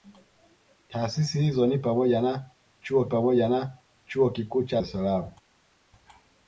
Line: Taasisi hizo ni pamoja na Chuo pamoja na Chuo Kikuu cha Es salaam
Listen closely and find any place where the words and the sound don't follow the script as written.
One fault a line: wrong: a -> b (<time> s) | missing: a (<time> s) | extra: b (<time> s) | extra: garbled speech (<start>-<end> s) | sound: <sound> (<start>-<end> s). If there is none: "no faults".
no faults